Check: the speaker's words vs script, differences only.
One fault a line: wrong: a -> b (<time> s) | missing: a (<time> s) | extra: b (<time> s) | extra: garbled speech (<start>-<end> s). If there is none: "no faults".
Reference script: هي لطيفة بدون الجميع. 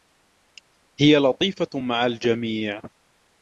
wrong: بدون -> مع (1.8 s)